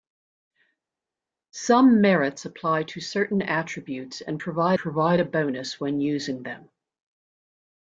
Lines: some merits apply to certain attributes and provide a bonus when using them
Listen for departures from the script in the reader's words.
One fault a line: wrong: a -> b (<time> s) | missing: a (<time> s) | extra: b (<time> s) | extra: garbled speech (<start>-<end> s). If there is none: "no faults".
extra: provide (4.8 s)